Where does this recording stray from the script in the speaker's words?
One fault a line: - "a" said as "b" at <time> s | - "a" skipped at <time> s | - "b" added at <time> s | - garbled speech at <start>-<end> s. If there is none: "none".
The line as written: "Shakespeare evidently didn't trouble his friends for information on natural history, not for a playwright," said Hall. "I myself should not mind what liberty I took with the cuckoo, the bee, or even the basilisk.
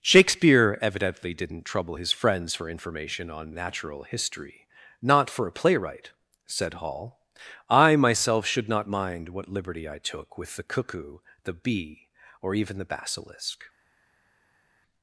none